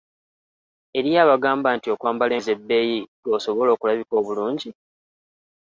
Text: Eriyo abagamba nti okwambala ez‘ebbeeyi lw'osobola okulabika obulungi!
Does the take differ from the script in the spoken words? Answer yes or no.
no